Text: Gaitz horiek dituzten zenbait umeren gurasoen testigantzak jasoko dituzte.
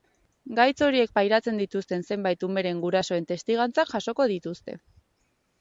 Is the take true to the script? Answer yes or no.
no